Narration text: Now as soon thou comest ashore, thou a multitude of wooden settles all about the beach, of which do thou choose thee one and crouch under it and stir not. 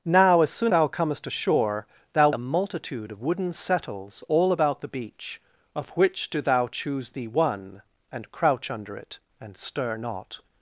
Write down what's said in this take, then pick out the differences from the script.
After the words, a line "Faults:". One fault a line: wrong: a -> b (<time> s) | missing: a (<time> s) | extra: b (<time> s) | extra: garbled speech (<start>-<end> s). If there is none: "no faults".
Now as soon thou comest ashore, thou a multitude of wooden settles all about the beach, of which do thou choose thee one and crouch under it and stir not.
Faults:
no faults